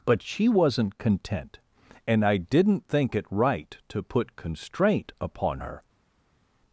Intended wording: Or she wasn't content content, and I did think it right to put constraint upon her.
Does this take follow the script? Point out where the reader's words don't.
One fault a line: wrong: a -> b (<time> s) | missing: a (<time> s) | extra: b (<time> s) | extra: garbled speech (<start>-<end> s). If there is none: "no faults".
wrong: Or -> But (0.0 s)
missing: content (1.6 s)
wrong: did -> didn't (2.4 s)